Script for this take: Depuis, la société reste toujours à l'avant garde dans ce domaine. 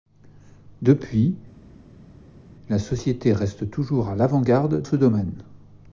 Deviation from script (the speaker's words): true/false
true